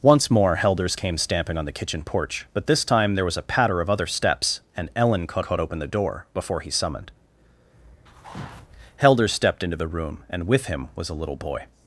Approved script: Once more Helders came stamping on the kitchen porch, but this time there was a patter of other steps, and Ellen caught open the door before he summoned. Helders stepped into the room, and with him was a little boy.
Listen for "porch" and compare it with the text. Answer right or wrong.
right